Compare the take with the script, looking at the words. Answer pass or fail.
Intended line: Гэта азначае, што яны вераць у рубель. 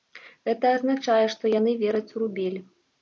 pass